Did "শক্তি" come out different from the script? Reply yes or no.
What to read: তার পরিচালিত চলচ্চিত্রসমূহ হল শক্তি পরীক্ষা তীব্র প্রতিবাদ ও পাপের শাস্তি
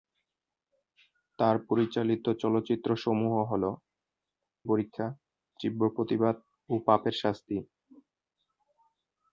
yes